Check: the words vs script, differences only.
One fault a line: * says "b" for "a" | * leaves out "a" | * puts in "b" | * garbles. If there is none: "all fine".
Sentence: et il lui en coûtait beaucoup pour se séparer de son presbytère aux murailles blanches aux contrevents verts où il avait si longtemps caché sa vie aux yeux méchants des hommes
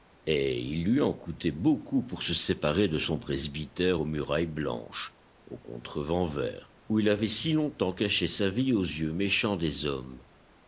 all fine